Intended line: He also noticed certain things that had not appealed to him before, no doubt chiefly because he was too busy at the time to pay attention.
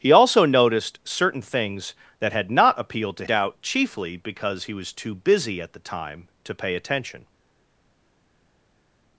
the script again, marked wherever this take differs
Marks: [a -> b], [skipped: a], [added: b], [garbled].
He also noticed certain things that had not appealed to [skipped: him before, no] doubt chiefly because he was too busy at the time to pay attention.